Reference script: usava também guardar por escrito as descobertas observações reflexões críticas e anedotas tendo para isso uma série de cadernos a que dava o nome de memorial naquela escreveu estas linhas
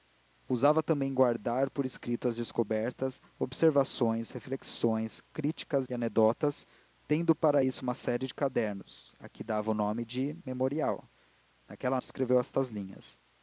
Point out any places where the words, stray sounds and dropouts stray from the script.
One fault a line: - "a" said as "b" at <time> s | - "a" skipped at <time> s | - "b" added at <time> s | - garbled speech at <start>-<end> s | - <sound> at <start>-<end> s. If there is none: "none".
none